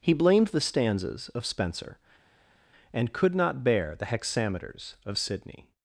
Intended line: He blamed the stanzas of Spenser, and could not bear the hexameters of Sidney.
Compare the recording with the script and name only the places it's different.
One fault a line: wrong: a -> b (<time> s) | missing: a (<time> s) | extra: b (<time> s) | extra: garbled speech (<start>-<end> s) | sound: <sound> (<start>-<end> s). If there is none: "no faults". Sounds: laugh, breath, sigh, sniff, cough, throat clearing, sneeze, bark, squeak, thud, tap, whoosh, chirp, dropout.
no faults